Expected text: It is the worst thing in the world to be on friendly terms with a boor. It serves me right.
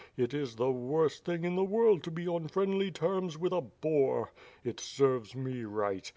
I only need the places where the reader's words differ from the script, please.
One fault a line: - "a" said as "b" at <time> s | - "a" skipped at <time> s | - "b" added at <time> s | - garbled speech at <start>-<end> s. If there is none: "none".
none